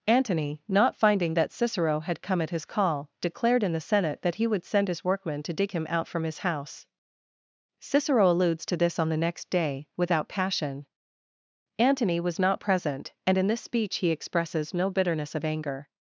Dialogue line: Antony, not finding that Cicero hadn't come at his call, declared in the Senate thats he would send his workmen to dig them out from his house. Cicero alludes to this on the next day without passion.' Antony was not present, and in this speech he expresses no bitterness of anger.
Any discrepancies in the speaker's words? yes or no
yes